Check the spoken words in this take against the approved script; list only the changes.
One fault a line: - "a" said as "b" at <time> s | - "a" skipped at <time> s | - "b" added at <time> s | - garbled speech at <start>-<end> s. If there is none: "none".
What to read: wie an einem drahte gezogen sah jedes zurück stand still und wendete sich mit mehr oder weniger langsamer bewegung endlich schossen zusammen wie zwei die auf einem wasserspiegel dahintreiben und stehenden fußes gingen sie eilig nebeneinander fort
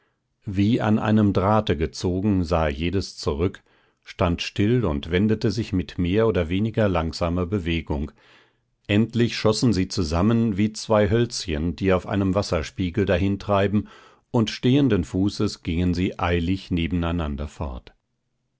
- "sie" added at 9.7 s
- "hölzchen" added at 11.1 s